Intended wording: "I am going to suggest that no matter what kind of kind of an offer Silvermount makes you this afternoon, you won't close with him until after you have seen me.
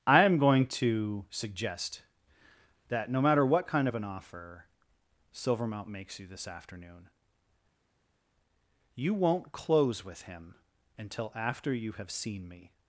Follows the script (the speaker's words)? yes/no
no